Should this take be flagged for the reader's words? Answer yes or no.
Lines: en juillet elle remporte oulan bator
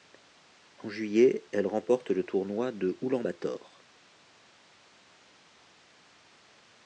yes